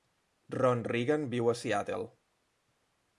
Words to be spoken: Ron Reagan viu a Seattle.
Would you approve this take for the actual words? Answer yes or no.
yes